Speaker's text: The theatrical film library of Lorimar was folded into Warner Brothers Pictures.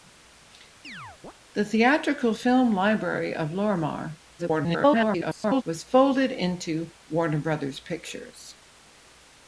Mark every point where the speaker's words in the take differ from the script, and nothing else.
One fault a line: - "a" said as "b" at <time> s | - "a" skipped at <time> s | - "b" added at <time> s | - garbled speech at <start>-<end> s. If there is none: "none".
- garbled speech at 4.4-5.6 s